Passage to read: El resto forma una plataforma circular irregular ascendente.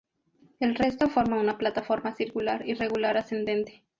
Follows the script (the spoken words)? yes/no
yes